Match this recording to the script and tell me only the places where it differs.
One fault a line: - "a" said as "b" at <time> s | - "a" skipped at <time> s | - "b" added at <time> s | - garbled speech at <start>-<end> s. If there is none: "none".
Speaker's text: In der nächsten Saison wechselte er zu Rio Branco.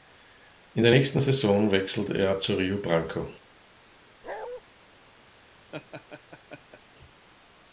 none